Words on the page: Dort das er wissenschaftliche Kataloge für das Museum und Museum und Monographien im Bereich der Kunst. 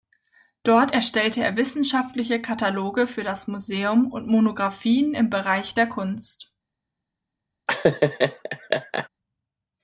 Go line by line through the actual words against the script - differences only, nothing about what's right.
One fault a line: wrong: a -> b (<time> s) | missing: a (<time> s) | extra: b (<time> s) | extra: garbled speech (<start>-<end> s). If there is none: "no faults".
wrong: das -> erstellte (0.9 s)
missing: Museum und (4.3 s)